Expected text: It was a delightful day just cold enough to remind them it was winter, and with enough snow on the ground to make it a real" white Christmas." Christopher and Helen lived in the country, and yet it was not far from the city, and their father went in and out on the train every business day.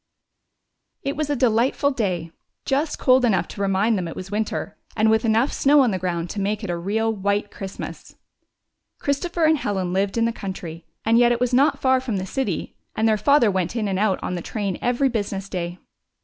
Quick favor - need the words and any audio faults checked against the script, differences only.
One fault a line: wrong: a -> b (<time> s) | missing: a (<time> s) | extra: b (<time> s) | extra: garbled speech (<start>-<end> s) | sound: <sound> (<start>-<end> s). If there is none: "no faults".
no faults